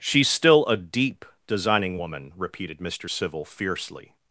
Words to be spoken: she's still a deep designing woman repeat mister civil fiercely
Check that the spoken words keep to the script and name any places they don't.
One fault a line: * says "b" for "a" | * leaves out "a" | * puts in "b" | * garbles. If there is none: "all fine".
* says "repeated" for "repeat"